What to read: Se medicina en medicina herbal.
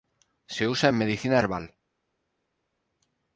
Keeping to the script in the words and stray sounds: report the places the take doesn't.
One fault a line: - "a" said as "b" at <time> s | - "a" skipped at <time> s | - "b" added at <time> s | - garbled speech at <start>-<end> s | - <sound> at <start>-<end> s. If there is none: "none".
- "medicina" said as "usa" at 0.7 s